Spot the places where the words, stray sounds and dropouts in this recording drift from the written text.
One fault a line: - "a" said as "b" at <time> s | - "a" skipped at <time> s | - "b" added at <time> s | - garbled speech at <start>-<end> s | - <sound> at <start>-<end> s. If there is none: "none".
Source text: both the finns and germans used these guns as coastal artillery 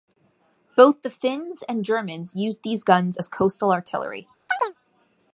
- chirp at 4.5-4.7 s